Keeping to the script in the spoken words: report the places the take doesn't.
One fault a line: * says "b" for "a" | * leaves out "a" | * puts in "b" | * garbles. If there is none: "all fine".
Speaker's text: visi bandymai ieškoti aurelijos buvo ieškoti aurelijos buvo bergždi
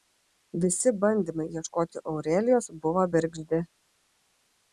* leaves out "ieškoti aurelijos buvo"